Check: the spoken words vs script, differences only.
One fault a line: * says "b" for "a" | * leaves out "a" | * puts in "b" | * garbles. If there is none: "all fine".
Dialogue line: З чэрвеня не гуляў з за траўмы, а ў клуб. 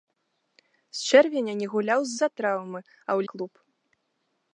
all fine